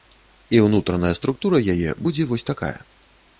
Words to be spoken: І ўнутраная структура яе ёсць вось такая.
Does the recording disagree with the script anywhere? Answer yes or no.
yes